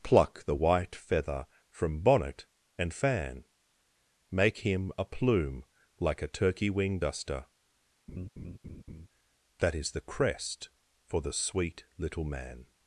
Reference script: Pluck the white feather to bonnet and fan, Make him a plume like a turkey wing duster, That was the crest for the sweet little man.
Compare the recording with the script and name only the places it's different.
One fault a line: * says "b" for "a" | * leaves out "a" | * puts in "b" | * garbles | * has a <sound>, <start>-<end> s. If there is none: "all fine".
* says "from" for "to"
* has a laugh, 8.1-9.1 s
* says "is" for "was"